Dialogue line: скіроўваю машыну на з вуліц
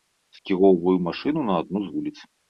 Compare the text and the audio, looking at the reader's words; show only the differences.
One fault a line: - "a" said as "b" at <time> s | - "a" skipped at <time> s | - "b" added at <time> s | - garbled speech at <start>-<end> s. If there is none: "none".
- "адну" added at 1.6 s